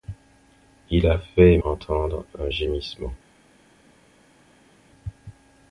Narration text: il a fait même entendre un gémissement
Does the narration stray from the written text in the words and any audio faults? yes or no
yes